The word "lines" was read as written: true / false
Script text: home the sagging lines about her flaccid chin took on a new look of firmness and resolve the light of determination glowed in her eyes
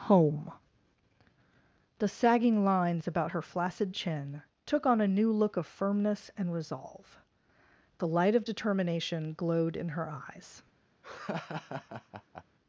true